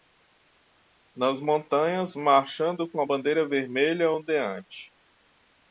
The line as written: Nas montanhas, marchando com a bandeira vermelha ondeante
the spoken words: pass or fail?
pass